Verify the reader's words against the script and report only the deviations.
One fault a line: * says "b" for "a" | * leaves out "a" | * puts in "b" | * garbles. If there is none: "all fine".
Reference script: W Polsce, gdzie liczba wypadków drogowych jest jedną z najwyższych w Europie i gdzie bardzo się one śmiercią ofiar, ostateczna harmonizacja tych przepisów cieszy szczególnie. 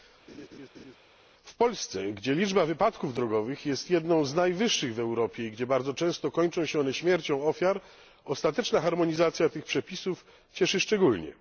* puts in "często kończą"